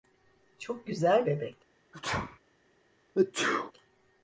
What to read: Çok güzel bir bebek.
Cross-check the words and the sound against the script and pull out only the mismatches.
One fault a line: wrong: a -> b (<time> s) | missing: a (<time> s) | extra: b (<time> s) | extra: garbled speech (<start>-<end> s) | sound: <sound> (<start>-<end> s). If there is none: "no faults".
missing: bir (1.3 s)
sound: sneeze (1.9-2.4 s)
sound: sneeze (3.1-3.7 s)